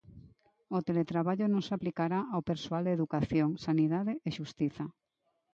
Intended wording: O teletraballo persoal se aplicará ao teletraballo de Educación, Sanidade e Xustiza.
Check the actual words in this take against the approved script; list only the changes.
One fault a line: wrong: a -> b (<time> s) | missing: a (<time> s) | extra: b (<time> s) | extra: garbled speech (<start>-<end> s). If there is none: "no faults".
wrong: persoal -> non (1.5 s)
wrong: teletraballo -> persoal (2.5 s)